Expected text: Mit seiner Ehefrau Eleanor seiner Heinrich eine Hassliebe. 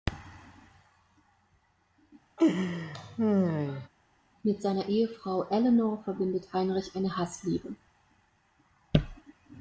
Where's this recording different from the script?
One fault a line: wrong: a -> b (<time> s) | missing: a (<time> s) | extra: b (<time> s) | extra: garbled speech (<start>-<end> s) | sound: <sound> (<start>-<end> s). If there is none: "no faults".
sound: laugh (2.4-3.9 s)
wrong: seiner -> verbindet (6.0 s)